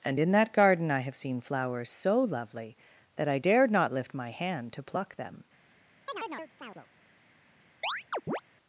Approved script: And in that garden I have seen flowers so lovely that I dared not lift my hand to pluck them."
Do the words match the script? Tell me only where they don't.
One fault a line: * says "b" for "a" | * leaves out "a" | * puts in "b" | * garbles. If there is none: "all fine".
all fine